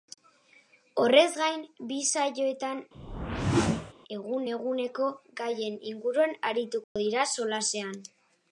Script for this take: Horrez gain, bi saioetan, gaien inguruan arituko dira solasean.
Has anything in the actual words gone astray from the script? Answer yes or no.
yes